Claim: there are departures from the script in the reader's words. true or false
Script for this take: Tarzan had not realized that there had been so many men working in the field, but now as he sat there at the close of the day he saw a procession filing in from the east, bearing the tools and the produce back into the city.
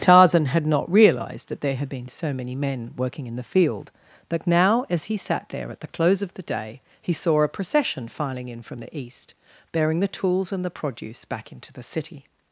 false